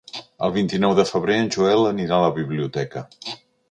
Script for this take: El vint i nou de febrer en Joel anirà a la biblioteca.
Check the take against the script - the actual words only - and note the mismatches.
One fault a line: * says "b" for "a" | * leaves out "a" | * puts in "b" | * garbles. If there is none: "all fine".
all fine